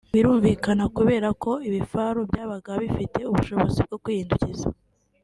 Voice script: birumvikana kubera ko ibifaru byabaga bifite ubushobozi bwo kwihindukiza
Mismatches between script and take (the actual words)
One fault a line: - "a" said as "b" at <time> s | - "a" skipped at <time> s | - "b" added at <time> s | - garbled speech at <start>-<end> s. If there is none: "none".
none